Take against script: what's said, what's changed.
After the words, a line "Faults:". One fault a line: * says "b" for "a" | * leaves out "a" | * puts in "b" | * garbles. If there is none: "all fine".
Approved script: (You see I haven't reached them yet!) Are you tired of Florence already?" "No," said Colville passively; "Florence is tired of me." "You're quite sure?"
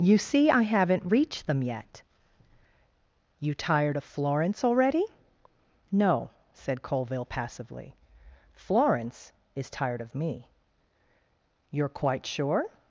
(You see I haven't reached them yet!) you tired of Florence already?" "No," said Colville passively; "Florence is tired of me." "You're quite sure?"
Faults:
* leaves out "Are"